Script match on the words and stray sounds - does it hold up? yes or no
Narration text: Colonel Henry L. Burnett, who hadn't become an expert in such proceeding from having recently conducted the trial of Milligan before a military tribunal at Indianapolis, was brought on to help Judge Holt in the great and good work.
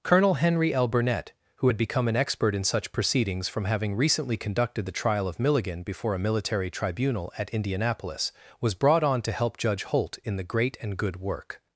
no